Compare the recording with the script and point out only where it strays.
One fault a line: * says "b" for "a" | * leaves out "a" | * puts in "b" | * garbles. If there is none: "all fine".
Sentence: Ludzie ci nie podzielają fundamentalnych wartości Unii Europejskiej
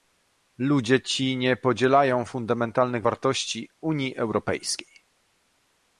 all fine